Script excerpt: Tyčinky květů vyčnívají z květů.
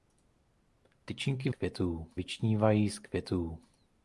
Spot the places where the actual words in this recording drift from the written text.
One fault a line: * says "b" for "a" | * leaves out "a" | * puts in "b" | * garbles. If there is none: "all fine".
all fine